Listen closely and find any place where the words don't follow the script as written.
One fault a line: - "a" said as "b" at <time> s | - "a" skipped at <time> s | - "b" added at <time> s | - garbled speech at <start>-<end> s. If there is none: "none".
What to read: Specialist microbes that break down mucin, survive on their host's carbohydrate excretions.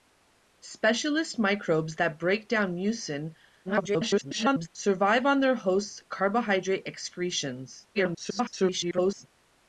- garbled speech at 3.6-4.7 s
- garbled speech at 7.9-9.3 s